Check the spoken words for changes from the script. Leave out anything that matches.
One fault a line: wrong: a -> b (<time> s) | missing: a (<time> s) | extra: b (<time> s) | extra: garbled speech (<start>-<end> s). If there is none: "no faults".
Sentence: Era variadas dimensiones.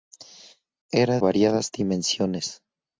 no faults